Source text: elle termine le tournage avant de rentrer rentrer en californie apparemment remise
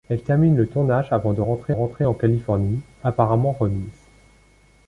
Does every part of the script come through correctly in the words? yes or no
yes